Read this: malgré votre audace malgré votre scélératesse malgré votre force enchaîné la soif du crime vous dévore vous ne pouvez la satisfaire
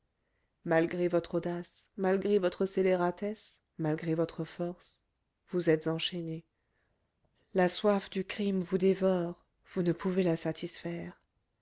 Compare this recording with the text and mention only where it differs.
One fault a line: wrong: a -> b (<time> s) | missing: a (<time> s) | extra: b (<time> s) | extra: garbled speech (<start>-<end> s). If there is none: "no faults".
extra: vous êtes (5.5 s)